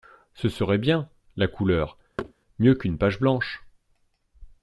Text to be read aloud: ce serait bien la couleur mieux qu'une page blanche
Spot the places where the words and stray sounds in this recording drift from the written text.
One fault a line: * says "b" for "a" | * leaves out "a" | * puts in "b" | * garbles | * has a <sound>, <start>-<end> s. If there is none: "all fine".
* has a thud, 2.2-2.3 s